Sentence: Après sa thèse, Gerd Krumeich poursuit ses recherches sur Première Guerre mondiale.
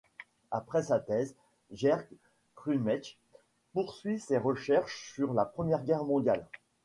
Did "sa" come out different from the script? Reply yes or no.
no